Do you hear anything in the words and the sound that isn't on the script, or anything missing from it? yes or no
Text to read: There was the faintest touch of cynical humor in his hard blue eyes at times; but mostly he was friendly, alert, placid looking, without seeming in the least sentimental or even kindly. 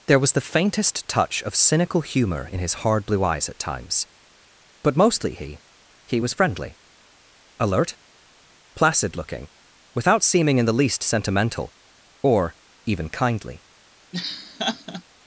yes